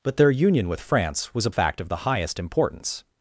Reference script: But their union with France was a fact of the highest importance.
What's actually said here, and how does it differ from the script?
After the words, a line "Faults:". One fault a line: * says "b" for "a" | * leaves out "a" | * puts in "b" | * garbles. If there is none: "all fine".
But their union with France was a fact of the highest importance.
Faults:
all fine